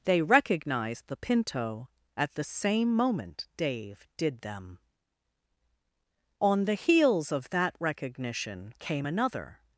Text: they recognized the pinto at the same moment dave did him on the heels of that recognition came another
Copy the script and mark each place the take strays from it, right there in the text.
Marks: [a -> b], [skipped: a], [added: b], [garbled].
they recognized the pinto at the same moment dave did [him -> them] on the heels of that recognition came another